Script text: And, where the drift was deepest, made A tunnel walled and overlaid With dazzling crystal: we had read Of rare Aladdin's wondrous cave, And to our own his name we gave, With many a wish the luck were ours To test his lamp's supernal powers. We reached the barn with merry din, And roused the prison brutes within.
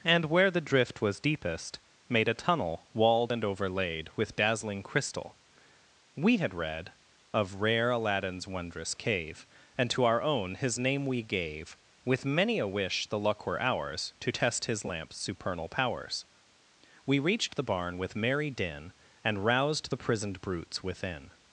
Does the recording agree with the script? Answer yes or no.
no